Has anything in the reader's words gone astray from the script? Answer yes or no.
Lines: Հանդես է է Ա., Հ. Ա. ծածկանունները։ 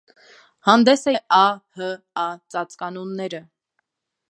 no